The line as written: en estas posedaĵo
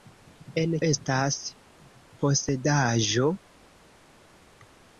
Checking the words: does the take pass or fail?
pass